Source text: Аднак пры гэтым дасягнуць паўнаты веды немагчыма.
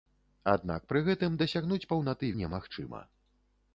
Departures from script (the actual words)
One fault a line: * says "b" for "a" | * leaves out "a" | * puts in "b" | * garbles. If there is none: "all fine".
* leaves out "веды"